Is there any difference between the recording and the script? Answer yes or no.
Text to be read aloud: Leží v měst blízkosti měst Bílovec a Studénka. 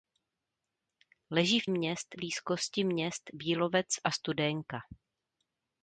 no